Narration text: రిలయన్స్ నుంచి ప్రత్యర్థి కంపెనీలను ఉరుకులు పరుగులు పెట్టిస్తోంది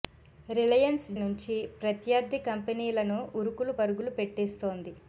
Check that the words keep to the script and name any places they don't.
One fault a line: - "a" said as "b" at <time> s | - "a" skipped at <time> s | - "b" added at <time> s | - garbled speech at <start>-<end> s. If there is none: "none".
none